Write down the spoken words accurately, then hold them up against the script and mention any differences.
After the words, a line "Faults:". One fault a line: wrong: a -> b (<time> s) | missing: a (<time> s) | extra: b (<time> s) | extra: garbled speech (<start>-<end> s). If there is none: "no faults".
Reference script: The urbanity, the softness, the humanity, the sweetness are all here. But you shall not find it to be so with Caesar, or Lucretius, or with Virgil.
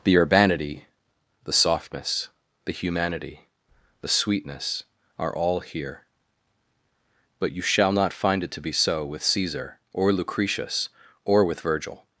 The urbanity, the softness, the humanity, the sweetness are all here. But you shall not find it to be so with Caesar, or Lucretius, or with Virgil.
Faults:
no faults